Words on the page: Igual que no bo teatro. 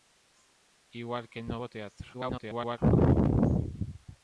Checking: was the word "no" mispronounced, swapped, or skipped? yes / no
no